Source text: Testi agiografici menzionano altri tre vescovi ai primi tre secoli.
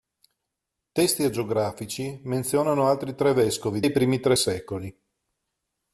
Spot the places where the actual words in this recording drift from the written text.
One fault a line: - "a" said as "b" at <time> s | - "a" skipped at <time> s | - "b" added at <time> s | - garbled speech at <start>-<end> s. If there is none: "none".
none